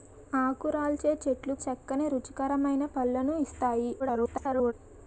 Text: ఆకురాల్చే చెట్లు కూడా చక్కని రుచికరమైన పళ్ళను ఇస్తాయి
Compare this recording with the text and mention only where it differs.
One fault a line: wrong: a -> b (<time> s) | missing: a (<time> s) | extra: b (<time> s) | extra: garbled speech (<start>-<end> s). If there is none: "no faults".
missing: కూడా (1.6 s)
extra: garbled speech (4.0-4.7 s)